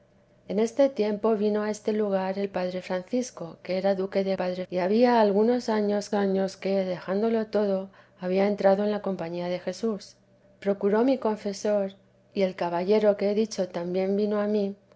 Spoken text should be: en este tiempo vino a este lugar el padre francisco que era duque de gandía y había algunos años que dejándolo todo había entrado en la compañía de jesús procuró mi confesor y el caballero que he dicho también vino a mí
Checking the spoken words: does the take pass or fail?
fail